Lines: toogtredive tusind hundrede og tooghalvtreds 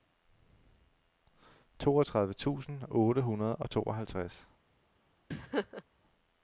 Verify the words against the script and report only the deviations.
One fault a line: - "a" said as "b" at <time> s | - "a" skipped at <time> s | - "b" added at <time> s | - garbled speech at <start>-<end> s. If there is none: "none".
- "otte" added at 2.9 s